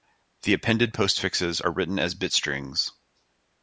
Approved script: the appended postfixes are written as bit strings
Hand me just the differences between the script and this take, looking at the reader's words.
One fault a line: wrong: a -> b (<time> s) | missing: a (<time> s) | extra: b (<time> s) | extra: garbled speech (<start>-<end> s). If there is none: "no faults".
no faults